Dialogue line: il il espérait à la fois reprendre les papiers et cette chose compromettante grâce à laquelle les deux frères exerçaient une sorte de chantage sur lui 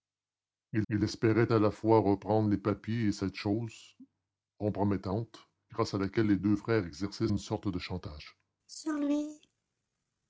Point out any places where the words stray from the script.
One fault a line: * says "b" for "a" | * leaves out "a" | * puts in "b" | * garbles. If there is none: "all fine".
all fine